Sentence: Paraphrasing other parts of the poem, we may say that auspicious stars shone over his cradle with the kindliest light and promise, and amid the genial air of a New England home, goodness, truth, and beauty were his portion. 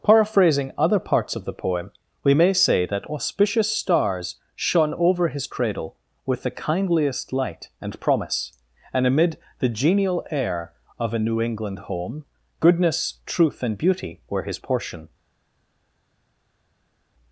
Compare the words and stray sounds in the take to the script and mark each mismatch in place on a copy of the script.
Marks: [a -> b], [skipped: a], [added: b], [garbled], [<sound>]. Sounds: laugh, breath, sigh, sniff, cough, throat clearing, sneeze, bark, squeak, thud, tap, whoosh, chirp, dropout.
Paraphrasing other parts of the poem, we may say that auspicious stars shone over his cradle with the kindliest light and promise, and amid the genial air of a New England home, goodness, truth, and beauty were his portion.